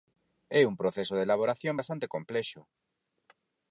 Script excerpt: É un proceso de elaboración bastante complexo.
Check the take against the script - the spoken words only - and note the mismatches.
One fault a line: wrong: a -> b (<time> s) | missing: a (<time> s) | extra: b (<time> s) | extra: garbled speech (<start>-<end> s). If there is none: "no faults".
no faults